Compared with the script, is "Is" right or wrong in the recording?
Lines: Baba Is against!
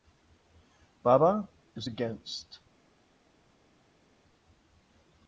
right